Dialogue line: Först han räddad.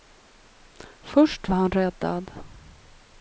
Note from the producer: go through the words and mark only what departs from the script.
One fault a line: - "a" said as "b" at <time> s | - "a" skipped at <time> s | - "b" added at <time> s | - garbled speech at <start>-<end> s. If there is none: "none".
none